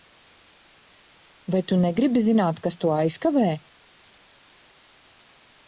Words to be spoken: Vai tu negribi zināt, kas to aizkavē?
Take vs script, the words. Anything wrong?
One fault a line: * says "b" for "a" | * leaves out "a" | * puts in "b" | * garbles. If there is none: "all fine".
all fine